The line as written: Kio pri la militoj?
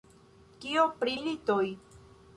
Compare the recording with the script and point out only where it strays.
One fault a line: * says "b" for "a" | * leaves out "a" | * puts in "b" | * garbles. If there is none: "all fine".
* leaves out "la"